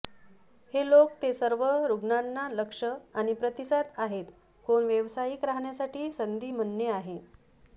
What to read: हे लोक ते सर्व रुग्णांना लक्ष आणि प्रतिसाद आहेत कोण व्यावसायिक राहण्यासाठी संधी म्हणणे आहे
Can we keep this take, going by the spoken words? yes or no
yes